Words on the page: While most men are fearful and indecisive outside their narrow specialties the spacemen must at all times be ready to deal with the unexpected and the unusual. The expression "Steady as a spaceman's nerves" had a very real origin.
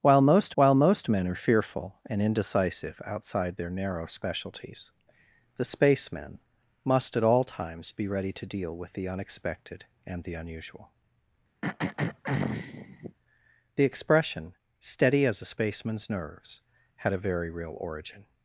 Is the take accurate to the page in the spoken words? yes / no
no